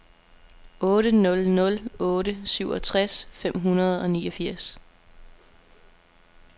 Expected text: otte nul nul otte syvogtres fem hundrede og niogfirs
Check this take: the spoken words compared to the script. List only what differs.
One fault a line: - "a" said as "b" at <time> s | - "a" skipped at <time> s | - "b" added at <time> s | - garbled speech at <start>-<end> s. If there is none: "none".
none